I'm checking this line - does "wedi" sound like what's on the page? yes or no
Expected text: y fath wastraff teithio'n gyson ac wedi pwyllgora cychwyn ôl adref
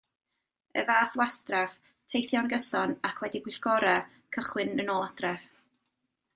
yes